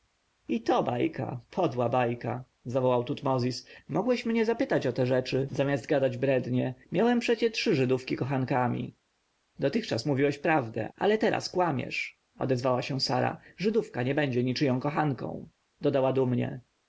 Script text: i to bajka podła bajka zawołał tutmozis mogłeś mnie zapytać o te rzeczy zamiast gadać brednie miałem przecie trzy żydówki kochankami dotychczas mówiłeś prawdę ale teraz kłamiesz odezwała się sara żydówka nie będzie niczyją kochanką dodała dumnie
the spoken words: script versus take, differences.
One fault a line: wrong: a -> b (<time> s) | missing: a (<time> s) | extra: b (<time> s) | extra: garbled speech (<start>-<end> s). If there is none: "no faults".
no faults